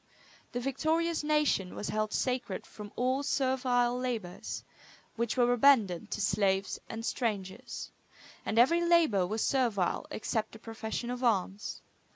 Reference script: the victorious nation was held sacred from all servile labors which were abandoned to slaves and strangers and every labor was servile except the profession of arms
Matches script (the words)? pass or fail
pass